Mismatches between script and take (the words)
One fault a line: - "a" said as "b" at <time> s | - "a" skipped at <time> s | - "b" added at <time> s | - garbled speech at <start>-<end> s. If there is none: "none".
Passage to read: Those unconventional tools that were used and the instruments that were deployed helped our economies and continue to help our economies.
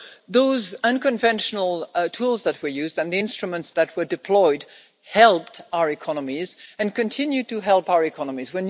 none